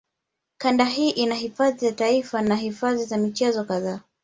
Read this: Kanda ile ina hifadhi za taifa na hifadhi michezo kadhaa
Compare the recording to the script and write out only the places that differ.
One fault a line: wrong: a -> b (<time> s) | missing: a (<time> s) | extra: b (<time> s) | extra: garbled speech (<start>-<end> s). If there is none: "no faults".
wrong: ile -> hii (0.8 s)
extra: za (3.0 s)